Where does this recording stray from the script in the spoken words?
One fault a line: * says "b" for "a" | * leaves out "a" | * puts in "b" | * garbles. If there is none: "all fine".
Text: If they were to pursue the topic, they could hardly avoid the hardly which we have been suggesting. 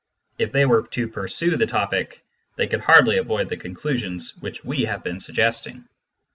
* says "conclusions" for "hardly"